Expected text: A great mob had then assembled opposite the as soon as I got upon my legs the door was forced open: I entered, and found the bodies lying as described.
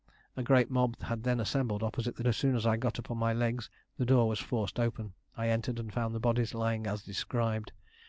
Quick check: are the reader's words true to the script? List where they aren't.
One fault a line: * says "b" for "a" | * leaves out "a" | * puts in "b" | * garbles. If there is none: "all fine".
all fine